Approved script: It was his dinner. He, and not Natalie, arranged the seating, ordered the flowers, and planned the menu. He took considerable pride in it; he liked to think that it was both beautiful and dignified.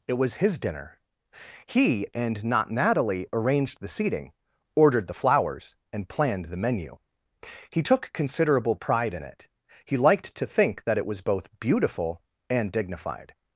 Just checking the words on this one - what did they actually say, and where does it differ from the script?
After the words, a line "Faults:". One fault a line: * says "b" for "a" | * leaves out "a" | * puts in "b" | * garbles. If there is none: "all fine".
It was his dinner. He, and not Natalie, arranged the seating, ordered the flowers, and planned the menu. He took considerable pride in it; he liked to think that it was both beautiful and dignified.
Faults:
all fine